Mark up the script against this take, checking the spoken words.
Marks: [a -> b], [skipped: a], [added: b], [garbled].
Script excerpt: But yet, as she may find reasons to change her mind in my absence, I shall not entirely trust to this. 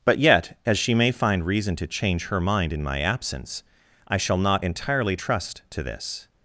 But yet, as she may find [reasons -> reason] to change her mind in my absence, I shall not entirely trust to this.